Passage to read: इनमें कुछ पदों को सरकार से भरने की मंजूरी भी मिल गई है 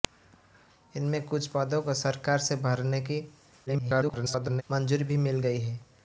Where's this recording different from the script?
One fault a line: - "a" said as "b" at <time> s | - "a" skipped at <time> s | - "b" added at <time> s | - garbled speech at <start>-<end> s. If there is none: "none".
- garbled speech at 3.7-4.6 s